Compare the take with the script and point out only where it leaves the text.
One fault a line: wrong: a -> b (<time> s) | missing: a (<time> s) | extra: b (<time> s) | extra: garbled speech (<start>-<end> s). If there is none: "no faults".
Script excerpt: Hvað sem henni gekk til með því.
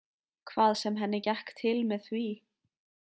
no faults